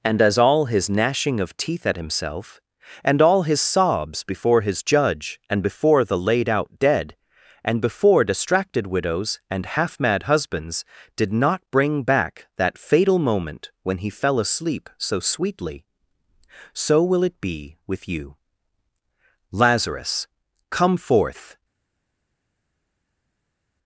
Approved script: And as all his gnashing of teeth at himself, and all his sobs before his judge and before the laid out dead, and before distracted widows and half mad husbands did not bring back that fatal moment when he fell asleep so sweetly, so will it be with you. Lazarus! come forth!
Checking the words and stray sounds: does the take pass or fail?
pass